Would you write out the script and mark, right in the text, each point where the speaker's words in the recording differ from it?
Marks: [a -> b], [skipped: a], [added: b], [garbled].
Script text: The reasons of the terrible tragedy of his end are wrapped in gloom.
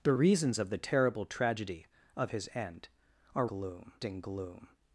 The reasons of the terrible tragedy of his end are [wrapped -> gloom] in gloom.